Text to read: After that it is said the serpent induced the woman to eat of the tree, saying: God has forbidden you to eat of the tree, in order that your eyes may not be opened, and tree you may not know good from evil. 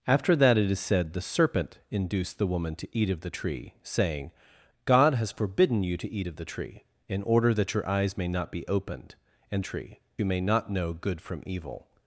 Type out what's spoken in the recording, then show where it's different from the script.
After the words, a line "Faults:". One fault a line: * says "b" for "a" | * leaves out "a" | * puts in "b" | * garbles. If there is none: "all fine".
After that it is said the serpent induced the woman to eat of the tree, saying: God has forbidden you to eat of the tree, in order that your eyes may not be opened, and tree you may not know good from evil.
Faults:
all fine